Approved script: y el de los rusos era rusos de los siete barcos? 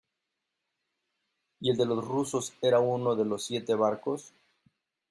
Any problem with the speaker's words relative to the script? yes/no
yes